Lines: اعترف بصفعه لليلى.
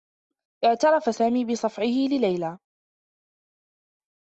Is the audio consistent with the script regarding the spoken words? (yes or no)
no